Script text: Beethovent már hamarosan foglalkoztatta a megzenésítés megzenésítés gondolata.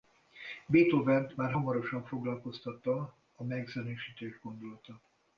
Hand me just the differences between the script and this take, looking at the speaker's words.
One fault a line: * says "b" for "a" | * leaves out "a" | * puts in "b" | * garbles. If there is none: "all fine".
* leaves out "megzenésítés"